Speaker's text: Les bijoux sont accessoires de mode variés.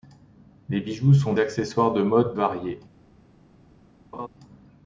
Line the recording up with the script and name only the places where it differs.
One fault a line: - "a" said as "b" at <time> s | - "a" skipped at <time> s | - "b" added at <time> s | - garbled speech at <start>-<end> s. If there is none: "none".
none